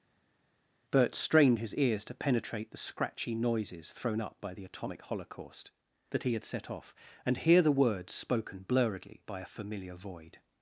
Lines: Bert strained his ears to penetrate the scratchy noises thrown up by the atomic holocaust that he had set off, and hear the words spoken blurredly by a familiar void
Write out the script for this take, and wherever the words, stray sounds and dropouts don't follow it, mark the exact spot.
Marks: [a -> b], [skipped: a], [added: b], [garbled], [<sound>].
Bert strained his ears to penetrate the scratchy noises thrown up by the atomic holocaust that he had set off, and hear the words spoken blurredly by a familiar void